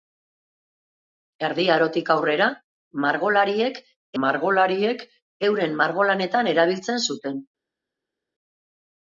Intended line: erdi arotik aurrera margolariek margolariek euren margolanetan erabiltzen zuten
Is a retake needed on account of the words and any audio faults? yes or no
no